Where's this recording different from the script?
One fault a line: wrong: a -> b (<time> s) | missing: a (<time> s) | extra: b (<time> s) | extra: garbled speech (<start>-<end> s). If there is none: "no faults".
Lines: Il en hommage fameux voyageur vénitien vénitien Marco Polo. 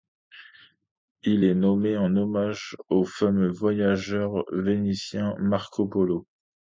extra: est nommé (1.4 s)
extra: au (2.9 s)
missing: vénitien (5.3 s)